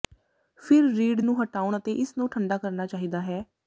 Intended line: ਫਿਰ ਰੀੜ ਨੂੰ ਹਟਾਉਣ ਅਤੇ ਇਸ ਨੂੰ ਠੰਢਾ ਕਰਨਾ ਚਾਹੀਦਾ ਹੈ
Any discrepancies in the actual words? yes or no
no